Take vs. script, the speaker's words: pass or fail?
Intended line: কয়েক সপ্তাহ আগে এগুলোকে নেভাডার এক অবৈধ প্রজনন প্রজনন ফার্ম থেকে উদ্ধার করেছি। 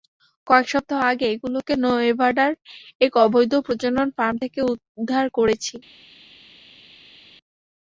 fail